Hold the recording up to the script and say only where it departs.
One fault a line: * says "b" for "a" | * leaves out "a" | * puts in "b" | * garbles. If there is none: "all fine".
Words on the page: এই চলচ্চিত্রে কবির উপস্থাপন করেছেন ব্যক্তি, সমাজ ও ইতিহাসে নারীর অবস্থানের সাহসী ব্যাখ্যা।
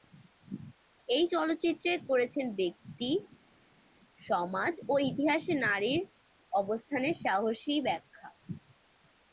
* leaves out "কবির উপস্থাপন"